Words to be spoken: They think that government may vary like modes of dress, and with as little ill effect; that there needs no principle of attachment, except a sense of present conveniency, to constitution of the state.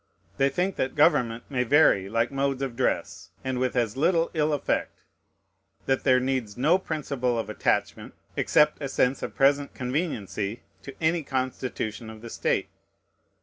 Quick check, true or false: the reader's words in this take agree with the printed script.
false